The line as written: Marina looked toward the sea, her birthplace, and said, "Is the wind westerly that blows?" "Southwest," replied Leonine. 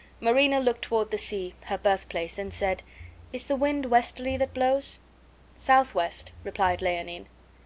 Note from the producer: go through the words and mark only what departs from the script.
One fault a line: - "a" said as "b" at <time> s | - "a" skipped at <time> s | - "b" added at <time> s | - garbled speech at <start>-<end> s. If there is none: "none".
none